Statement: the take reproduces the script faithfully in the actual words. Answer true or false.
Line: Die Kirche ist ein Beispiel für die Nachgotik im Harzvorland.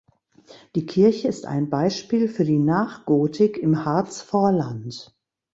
true